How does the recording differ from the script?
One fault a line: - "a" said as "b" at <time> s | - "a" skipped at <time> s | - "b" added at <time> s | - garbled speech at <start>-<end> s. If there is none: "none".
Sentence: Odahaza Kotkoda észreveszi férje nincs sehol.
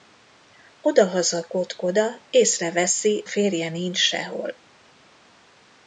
none